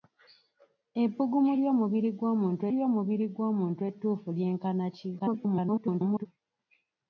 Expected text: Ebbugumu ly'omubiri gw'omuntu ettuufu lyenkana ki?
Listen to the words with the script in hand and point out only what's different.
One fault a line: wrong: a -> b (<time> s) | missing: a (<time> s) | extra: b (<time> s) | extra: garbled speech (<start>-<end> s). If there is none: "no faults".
extra: ly'omubiri gw'omuntu (2.7 s)
extra: garbled speech (5.2-6.3 s)